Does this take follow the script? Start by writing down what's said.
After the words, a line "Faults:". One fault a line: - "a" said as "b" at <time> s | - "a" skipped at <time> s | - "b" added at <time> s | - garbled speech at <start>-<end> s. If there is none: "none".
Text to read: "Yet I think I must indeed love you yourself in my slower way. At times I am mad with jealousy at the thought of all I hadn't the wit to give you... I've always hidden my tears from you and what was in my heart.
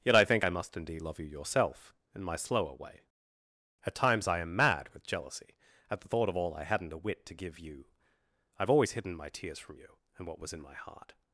"Yet I think I must indeed love you yourself in my slower way. At times I am mad with jealousy at the thought of all I hadn't a wit to give you... I've always hidden my tears from you and what was in my heart.
Faults:
- "the" said as "a" at 6.9 s